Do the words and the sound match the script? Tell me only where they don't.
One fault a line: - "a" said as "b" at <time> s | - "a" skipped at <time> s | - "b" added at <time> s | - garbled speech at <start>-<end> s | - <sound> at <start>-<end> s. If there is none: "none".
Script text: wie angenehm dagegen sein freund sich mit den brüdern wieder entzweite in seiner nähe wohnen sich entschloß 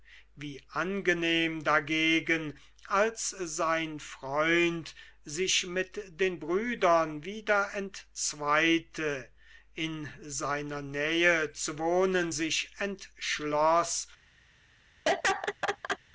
- "als" added at 2.9 s
- "zu" added at 11.5 s
- laugh at 15.1-16.0 s